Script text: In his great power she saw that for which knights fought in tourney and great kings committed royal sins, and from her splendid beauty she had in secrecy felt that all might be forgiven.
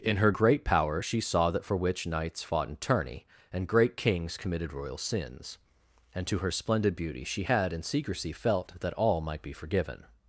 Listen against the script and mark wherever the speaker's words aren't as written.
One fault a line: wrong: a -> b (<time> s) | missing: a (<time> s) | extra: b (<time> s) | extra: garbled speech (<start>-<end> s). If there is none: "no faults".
wrong: his -> her (0.2 s)
wrong: from -> to (6.3 s)